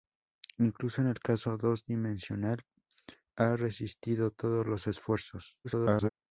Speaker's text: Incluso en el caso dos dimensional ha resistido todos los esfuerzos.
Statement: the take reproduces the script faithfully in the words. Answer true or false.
false